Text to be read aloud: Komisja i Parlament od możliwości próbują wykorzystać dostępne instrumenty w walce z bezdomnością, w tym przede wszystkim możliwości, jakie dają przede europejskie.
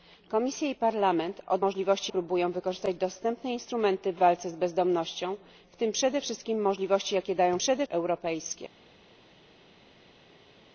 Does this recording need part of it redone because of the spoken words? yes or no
no